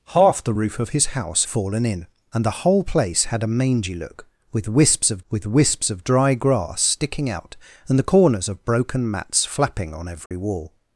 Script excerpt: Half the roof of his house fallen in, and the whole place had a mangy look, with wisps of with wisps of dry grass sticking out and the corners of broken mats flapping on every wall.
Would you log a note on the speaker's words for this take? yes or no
no